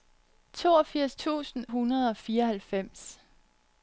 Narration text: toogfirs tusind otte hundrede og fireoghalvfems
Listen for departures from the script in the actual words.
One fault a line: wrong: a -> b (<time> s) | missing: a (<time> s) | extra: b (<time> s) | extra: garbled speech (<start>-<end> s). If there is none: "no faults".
missing: otte (1.6 s)